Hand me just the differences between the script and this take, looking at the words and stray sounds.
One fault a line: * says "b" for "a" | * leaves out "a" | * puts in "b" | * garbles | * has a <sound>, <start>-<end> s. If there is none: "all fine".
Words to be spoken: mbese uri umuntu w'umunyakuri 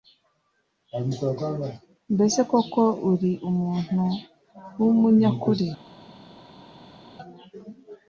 * puts in "koko"